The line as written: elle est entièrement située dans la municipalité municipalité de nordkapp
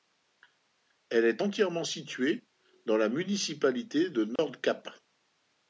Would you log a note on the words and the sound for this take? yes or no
yes